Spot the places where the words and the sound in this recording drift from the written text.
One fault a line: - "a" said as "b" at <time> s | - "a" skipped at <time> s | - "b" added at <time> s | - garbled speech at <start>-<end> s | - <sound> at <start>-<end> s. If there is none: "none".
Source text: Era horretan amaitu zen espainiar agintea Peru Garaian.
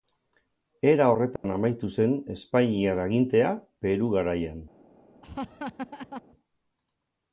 - dropout at 1.4-1.4 s
- laugh at 5.2-6.2 s